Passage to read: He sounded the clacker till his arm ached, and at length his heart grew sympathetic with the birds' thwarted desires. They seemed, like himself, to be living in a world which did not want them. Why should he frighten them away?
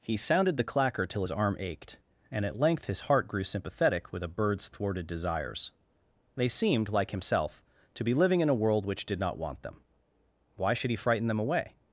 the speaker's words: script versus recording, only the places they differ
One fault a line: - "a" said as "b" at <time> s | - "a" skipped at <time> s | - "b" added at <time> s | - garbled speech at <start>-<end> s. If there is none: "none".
- "the" said as "a" at 4.2 s